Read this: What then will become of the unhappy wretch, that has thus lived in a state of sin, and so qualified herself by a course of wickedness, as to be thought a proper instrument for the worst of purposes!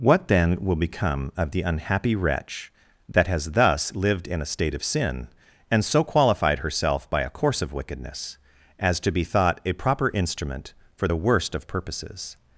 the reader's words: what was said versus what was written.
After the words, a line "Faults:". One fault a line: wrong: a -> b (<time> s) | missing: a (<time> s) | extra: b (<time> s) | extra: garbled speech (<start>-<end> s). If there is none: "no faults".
What then will become of the unhappy wretch, that has thus lived in a state of sin, and so qualified herself by a course of wickedness, as to be thought a proper instrument for the worst of purposes!
Faults:
no faults